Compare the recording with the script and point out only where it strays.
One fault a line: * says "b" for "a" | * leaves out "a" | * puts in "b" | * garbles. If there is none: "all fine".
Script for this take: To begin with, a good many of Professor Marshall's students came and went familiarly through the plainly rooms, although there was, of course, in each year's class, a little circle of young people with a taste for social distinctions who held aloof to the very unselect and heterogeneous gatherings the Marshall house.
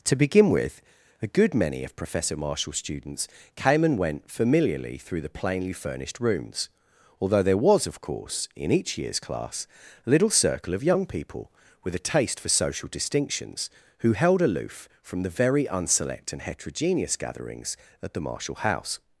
* puts in "furnished"
* says "from" for "to"
* puts in "at"